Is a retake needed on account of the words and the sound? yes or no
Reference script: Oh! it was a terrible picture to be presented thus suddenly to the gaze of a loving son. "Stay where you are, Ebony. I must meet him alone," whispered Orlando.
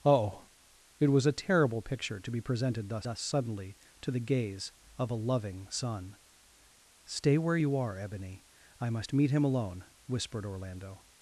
yes